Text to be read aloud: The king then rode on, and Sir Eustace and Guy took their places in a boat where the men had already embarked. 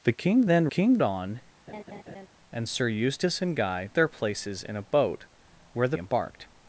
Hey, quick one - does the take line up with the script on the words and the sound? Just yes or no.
no